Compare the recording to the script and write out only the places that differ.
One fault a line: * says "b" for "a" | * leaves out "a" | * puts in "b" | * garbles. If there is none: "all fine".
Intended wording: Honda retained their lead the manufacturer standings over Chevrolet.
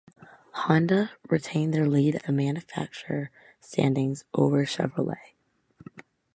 all fine